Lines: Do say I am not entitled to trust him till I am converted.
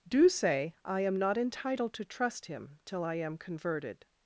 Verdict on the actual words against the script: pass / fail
pass